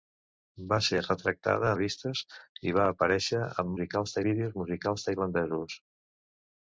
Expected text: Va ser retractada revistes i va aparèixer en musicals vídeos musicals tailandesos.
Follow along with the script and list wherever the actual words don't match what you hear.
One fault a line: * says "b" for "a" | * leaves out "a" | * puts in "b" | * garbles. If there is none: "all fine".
all fine